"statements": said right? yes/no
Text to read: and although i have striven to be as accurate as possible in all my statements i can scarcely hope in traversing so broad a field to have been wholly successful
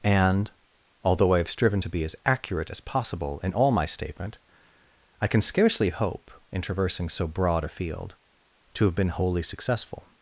no